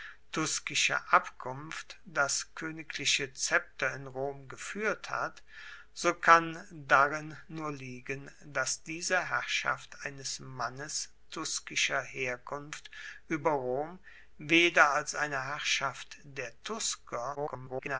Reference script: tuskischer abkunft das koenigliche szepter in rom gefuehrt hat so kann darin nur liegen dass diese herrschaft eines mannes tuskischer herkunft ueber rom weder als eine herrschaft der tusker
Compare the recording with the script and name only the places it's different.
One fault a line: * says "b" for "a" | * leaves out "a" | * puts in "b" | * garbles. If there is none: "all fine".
* garbles